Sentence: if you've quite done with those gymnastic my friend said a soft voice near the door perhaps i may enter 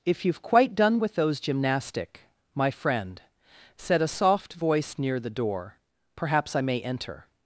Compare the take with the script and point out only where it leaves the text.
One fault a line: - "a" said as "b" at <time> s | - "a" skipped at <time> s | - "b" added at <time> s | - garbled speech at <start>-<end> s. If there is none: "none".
none